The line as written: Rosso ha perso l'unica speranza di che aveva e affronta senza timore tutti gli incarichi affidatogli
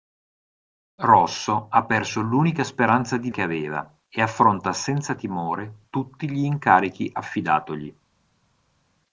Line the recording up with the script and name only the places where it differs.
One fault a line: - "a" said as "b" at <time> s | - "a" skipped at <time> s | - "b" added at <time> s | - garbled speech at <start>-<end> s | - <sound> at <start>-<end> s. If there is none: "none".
none